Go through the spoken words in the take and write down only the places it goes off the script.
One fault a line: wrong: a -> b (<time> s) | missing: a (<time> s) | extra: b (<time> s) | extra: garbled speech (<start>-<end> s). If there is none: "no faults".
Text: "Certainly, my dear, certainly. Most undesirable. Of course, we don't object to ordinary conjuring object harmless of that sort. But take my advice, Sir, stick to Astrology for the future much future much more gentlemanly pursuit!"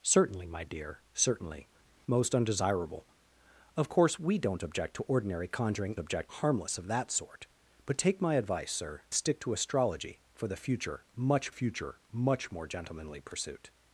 no faults